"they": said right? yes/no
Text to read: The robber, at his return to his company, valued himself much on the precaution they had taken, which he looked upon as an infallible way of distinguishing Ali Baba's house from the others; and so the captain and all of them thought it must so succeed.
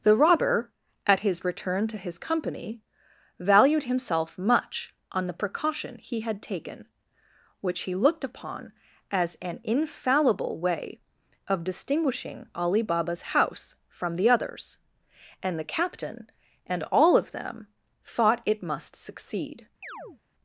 no